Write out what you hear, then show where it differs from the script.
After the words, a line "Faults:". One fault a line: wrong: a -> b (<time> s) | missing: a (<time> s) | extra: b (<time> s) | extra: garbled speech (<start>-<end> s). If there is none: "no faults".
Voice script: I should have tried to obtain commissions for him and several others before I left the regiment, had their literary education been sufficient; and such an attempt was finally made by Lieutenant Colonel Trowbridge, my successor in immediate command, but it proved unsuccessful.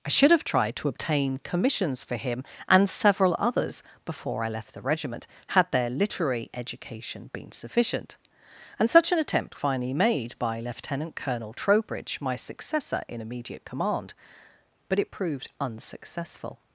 I should have tried to obtain commissions for him and several others before I left the regiment, had their literary education been sufficient; and such an attempt finally made by Lieutenant Colonel Trowbridge, my successor in immediate command, but it proved unsuccessful.
Faults:
missing: was (9.6 s)